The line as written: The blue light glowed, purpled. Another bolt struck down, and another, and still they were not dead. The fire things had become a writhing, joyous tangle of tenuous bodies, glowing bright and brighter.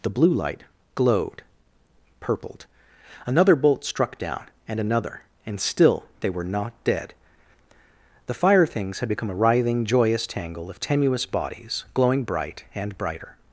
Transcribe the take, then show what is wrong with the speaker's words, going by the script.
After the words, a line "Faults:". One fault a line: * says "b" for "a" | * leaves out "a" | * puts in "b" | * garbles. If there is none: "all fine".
The blue light glowed, purpled. Another bolt struck down, and another, and still they were not dead. The fire things had become a writhing, joyous tangle of tenuous bodies, glowing bright and brighter.
Faults:
all fine